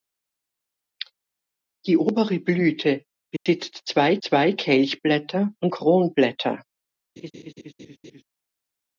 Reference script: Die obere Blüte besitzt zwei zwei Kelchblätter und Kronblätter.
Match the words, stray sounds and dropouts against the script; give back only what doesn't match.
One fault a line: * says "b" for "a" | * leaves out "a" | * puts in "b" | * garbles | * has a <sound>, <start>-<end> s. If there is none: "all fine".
* has a dropout, 3.4-3.5 s
* has a laugh, 7.2-8.2 s